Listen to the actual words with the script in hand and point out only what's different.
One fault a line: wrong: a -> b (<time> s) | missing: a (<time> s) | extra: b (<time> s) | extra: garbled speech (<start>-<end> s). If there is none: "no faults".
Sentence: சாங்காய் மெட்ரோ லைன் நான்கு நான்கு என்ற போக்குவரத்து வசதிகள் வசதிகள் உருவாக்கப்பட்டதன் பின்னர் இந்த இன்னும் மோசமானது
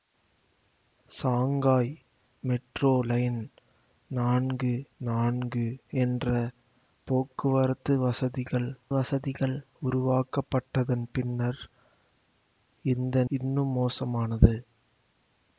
no faults